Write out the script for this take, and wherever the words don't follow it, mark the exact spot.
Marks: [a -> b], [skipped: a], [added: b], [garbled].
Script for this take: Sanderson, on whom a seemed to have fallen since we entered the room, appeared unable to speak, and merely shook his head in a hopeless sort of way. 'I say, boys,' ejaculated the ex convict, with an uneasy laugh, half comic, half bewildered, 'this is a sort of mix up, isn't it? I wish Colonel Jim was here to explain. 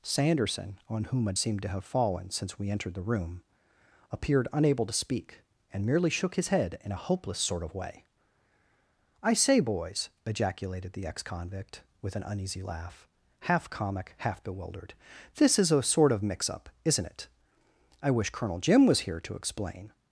Sanderson, on whom a seemed to have fallen since we entered the room, appeared unable to speak, and merely shook his head in a hopeless sort of way. 'I say, boys,' ejaculated the ex convict, with an uneasy laugh, half comic, half bewildered, 'this is a sort of mix up, isn't it? I wish Colonel Jim was here to explain.